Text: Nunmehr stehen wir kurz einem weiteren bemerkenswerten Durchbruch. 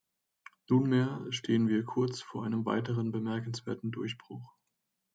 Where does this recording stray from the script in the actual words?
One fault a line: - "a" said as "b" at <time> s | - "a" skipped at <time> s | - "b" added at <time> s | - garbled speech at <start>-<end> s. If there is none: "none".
- "vor" added at 2.2 s